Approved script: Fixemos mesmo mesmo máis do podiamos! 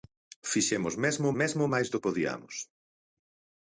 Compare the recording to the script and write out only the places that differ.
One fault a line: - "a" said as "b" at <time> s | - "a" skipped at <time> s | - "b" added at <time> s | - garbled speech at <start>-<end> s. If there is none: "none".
none